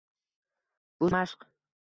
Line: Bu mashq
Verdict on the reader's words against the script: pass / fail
pass